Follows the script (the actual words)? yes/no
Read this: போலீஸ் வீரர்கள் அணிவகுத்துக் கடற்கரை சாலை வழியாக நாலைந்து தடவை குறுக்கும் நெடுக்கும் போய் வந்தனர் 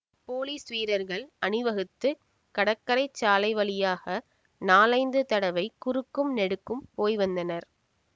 yes